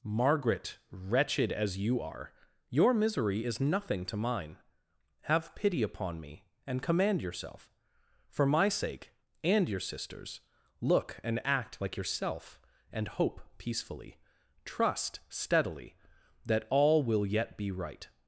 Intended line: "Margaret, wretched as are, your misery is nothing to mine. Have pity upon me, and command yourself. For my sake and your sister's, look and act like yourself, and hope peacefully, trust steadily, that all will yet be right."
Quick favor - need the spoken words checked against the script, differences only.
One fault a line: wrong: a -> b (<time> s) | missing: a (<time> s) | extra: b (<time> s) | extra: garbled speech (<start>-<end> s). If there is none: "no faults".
extra: you (1.8 s)